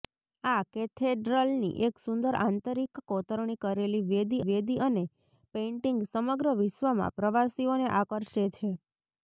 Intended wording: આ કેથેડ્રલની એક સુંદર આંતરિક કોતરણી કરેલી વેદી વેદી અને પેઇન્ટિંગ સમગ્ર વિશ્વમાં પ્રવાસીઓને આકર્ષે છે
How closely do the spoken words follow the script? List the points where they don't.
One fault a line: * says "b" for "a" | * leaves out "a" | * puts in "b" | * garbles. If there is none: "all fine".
all fine